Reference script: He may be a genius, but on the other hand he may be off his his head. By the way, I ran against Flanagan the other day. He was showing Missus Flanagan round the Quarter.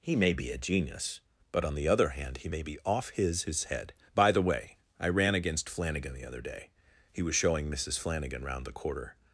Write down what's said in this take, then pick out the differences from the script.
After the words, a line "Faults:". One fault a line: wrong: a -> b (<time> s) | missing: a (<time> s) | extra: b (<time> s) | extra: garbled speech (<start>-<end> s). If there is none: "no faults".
He may be a genius, but on the other hand he may be off his his head. By the way, I ran against Flanagan the other day. He was showing Missus Flanagan round the Quarter.
Faults:
no faults